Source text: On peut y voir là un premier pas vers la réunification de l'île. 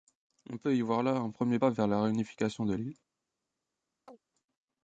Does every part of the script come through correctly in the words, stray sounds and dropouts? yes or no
no